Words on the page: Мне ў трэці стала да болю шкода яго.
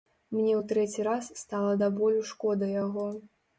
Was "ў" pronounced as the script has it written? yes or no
yes